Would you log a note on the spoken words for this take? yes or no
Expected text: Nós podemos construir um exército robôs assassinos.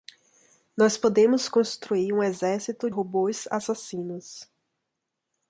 no